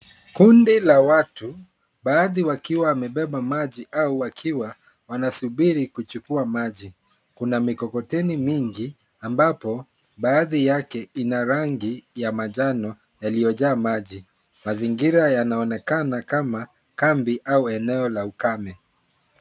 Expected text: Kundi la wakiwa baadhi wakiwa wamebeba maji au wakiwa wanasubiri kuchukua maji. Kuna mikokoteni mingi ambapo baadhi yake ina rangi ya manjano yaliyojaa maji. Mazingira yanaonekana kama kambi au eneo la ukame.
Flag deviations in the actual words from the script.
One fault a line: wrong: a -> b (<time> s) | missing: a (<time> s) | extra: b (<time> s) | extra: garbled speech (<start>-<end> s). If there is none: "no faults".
wrong: wakiwa -> watu (1.0 s)